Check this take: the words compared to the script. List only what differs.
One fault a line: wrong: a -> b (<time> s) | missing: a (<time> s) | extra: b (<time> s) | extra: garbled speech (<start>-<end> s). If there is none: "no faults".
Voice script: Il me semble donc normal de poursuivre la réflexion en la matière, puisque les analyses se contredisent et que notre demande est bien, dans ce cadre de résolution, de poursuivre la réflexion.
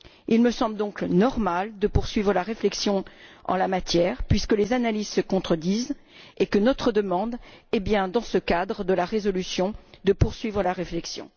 extra: la (8.9 s)